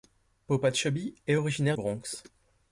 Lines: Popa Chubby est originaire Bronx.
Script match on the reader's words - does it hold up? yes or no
yes